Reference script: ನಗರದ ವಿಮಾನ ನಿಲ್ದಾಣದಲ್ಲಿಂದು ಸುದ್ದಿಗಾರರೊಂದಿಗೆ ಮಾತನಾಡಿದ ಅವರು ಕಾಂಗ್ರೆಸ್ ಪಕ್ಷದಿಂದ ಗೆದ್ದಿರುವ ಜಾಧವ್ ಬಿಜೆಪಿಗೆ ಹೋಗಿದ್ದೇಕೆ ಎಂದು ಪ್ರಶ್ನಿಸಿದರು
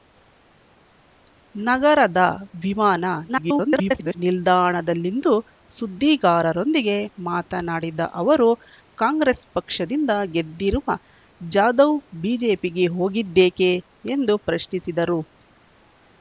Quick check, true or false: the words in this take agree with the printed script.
false